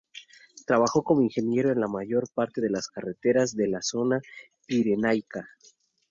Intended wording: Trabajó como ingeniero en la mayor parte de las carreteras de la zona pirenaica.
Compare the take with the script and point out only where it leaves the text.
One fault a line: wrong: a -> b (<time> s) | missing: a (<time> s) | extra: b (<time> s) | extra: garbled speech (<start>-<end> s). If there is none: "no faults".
no faults